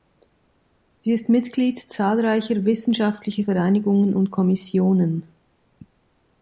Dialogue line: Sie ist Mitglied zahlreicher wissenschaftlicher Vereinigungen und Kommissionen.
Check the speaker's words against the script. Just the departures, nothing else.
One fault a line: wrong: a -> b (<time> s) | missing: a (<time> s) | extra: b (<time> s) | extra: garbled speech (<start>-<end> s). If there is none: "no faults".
no faults